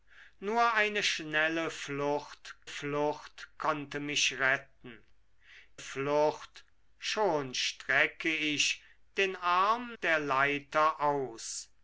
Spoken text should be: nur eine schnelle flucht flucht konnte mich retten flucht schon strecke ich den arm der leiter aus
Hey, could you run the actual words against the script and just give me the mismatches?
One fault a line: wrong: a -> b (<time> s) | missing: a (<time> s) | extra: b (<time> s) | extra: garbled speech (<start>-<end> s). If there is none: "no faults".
no faults